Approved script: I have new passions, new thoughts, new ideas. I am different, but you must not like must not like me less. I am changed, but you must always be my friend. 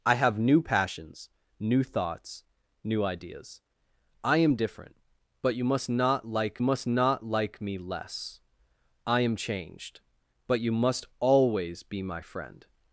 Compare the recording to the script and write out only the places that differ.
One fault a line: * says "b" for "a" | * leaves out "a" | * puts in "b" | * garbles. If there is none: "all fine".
all fine